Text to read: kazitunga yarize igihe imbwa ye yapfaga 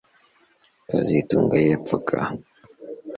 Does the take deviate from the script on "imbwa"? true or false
true